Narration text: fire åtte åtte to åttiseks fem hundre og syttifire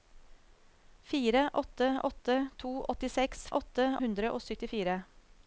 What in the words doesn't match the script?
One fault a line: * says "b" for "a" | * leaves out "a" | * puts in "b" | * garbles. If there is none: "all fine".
* says "åtte" for "fem"